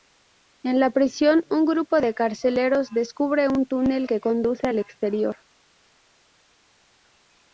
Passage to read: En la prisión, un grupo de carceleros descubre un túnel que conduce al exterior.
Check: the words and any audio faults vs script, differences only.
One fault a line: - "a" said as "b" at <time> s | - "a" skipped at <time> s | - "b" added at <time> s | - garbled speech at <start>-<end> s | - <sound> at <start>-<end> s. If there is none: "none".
none